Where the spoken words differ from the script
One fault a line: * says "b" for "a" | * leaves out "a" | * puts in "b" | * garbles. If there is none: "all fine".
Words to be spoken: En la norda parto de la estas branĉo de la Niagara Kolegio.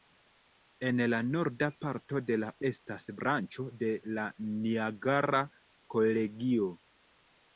all fine